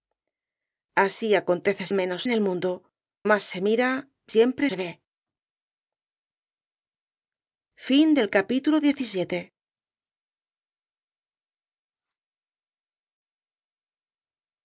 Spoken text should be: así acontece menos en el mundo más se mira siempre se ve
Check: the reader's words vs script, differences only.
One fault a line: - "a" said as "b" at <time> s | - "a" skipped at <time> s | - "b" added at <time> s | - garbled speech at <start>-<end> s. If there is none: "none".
none